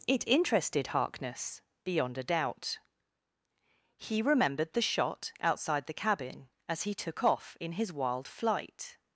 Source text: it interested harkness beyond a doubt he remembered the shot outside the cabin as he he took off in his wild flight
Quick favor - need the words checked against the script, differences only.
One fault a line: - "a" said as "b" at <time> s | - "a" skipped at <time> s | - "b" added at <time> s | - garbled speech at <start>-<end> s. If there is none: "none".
- "he" skipped at 7.0 s